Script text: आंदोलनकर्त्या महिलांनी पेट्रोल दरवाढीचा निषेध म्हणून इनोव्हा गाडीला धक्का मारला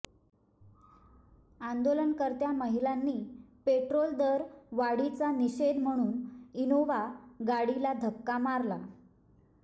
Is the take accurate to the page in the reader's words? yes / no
yes